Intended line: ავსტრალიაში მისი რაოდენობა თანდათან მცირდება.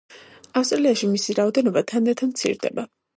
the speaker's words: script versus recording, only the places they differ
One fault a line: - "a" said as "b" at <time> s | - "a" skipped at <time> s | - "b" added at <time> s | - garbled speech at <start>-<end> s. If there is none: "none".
none